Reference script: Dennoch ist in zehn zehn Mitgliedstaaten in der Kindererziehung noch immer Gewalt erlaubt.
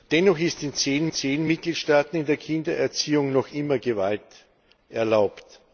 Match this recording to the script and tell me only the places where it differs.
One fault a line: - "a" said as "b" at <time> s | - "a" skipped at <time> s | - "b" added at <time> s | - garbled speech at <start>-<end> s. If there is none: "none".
none